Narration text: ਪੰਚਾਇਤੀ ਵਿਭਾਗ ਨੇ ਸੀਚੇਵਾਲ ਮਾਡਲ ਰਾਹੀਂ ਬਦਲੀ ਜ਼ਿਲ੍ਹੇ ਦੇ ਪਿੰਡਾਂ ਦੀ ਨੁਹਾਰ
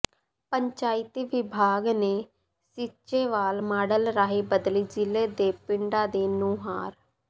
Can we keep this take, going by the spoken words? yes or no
yes